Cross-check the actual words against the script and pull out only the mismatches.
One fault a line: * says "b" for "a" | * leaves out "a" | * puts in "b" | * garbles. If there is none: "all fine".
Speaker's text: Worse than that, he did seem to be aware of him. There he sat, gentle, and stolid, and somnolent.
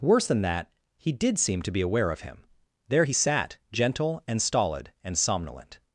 all fine